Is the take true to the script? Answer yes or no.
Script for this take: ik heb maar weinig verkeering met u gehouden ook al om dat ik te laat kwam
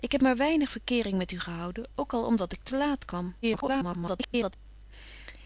no